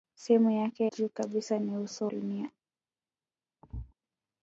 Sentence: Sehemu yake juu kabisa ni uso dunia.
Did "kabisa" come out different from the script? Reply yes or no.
no